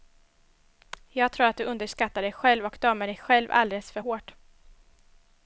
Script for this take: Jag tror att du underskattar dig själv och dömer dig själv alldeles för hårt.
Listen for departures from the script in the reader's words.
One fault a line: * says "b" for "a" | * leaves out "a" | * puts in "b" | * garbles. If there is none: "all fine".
all fine